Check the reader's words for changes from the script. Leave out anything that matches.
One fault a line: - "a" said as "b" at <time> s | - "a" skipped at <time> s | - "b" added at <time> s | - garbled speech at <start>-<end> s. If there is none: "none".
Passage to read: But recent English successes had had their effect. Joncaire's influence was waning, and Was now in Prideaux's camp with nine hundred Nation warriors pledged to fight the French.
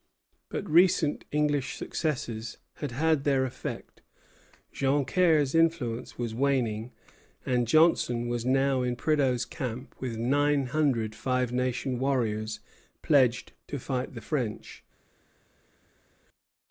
- "Johnson" added at 7.7 s
- "Five" added at 11.1 s